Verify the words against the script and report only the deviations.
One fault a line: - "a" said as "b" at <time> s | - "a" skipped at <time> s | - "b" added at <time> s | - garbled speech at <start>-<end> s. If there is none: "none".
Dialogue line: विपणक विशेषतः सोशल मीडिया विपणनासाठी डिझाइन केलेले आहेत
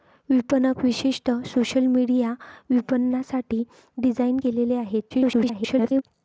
- garbled speech at 5.1-6.0 s